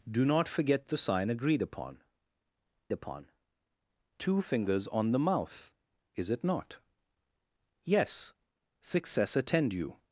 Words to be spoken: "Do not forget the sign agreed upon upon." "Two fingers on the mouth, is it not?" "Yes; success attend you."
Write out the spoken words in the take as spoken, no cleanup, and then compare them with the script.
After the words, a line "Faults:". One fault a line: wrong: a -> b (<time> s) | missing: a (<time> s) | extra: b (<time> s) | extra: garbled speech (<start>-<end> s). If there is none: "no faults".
"Do not forget the sign agreed upon upon." "Two fingers on the mouth, is it not?" "Yes; success attend you."
Faults:
no faults